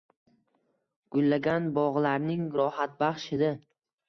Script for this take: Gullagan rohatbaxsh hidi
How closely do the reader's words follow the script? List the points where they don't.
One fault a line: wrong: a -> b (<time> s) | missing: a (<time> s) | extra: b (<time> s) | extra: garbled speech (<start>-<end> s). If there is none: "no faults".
extra: bog‘larning (1.8 s)